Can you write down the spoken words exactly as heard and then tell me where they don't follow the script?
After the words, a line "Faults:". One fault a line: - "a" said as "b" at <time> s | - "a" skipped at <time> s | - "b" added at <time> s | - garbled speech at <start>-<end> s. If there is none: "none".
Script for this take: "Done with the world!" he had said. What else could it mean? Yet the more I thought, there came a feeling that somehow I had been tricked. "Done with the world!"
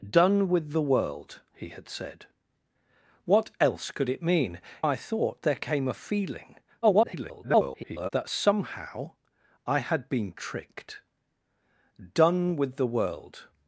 "Done with the world!" he had said. What else could it mean? I thought, there came a feeling [garbled] that somehow I had been tricked. "Done with the world!"
Faults:
- "Yet the more" skipped at 4.6 s
- garbled speech at 6.8-8.1 s